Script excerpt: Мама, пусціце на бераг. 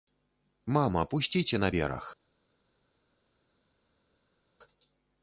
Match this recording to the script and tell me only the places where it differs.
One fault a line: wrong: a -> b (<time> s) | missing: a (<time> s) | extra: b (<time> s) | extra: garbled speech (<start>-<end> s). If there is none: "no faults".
no faults